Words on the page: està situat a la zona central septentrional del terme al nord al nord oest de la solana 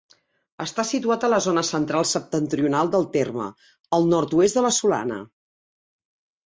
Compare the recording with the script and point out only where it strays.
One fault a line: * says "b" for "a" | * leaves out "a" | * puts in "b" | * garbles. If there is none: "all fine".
* leaves out "al nord"